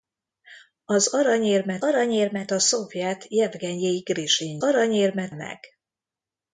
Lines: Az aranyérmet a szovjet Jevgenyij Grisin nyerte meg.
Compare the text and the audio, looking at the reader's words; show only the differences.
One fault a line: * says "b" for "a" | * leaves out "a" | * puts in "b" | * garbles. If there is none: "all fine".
* puts in "aranyérmet"
* says "aranyérmet" for "nyerte"